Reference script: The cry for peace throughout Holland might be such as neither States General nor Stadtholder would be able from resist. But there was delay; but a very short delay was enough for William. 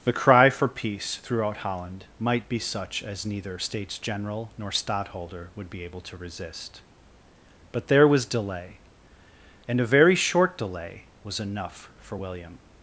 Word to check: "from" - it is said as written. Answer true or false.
false